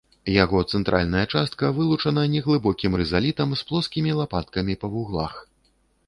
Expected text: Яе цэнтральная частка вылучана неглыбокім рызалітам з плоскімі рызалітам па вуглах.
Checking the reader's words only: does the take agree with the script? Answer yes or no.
no